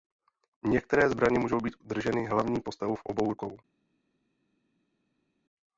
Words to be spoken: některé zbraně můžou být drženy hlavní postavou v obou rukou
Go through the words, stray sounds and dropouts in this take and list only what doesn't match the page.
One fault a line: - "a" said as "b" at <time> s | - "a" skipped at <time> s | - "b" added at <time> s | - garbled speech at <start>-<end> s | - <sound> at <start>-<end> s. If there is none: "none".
none